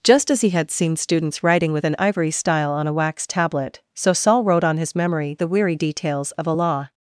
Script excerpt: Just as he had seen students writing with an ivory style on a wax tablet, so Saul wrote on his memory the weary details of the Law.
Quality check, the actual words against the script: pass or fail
fail